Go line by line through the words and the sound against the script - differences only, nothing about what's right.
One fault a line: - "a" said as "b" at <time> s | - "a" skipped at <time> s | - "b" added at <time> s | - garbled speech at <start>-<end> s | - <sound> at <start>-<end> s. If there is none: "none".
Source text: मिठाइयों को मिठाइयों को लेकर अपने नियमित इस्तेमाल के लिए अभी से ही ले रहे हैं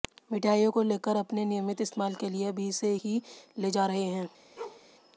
- "मिठाइयों को" skipped at 0.8 s
- "जा" added at 3.7 s
- bark at 4.6-4.9 s